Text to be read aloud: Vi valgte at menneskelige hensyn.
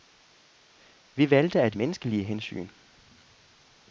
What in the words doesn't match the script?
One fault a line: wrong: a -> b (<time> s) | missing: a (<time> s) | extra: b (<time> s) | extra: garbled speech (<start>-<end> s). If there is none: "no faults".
no faults